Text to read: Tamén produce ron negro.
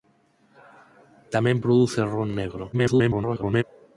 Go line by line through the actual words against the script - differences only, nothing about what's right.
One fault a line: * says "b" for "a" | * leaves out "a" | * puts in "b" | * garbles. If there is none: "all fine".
* garbles